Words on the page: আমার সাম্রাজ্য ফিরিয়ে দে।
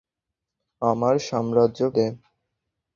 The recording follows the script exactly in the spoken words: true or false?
false